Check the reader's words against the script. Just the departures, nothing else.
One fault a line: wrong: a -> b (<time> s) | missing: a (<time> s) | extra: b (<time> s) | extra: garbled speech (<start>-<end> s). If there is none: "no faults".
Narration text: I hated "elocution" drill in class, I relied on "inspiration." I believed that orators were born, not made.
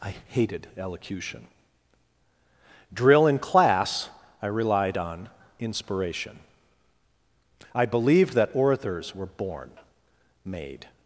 missing: not (9.7 s)